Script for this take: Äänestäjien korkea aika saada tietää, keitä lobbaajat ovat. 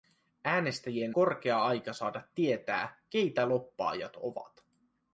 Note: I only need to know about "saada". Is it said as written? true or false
true